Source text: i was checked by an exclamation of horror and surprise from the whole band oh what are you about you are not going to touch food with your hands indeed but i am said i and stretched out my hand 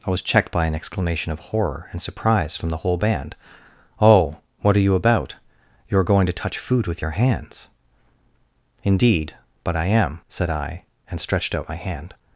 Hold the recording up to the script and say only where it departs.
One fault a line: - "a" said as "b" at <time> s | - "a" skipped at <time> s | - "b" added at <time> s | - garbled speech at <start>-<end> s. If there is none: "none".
- "not" skipped at 6.0 s